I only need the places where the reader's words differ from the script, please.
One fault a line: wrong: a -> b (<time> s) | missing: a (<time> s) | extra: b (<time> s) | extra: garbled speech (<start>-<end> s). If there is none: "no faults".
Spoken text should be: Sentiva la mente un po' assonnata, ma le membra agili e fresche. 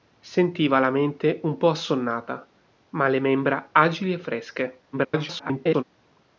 extra: garbled speech (4.9-5.8 s)